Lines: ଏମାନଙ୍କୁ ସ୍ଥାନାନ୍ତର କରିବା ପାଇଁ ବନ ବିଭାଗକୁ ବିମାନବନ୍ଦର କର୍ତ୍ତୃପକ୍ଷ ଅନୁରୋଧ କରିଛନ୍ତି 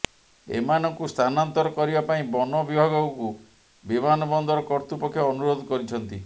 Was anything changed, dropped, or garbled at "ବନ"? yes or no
no